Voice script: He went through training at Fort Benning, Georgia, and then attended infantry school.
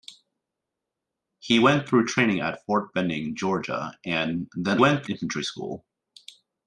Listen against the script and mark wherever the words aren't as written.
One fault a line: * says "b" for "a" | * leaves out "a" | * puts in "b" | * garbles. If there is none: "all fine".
* says "went" for "attended"